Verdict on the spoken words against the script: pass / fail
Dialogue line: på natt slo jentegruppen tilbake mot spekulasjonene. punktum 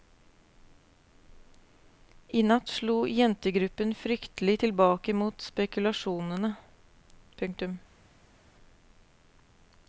fail